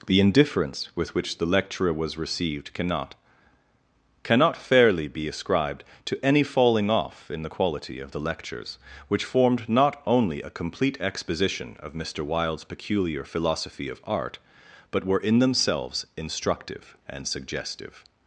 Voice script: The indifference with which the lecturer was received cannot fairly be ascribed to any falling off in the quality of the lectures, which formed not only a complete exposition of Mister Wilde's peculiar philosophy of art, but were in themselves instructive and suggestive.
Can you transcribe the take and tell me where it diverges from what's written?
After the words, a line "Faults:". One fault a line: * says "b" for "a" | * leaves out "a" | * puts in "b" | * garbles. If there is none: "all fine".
The indifference with which the lecturer was received cannot cannot fairly be ascribed to any falling off in the quality of the lectures, which formed not only a complete exposition of Mister Wilde's peculiar philosophy of art, but were in themselves instructive and suggestive.
Faults:
* puts in "cannot"